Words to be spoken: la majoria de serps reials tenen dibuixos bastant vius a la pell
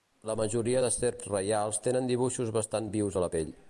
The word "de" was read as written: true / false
true